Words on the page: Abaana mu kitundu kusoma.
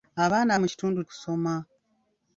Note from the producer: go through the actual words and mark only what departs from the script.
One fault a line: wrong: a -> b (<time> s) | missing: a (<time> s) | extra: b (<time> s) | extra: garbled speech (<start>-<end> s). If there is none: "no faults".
no faults